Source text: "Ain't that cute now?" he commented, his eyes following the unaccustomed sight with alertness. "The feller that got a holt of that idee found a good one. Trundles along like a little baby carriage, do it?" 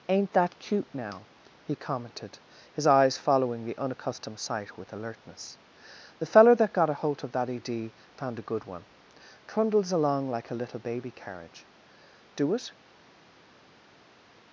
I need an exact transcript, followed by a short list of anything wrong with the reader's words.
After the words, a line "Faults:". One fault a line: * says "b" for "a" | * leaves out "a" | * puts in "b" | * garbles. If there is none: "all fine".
"Ain't that cute now?" he commented, his eyes following the unaccustomed sight with alertness. "The feller that got a holt of that idee found a good one. Trundles along like a little baby carriage, do it?"
Faults:
all fine